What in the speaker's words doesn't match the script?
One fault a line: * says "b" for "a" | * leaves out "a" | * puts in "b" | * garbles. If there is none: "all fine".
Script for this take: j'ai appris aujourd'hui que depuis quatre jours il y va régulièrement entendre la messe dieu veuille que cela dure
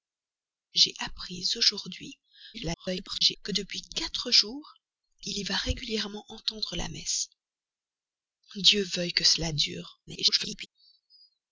* garbles
* garbles